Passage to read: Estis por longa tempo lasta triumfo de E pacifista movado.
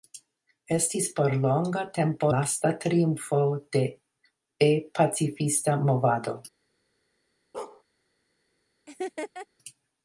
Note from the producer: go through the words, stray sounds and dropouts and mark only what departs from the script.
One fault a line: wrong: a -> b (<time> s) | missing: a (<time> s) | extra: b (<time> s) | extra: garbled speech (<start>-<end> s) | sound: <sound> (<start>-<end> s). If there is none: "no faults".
sound: bark (7.5-7.8 s)
sound: laugh (8.9-9.5 s)